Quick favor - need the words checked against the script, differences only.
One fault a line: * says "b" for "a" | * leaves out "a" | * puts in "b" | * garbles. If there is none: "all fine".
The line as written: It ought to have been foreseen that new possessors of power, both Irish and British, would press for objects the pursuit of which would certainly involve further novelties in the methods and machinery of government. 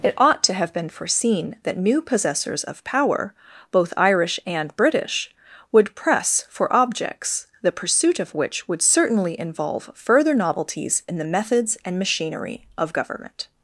all fine